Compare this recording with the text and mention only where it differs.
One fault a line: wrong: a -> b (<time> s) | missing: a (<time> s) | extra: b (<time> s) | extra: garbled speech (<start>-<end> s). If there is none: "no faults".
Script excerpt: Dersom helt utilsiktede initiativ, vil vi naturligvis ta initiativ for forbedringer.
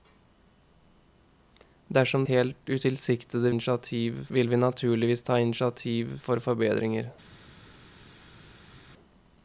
no faults